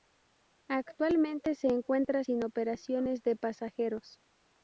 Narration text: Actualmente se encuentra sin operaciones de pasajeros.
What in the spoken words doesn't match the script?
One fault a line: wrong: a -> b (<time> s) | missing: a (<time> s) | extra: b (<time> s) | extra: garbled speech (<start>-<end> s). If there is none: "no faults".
no faults